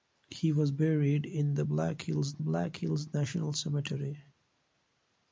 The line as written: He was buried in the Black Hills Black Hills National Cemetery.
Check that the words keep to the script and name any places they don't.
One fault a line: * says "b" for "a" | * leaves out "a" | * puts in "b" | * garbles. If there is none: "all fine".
all fine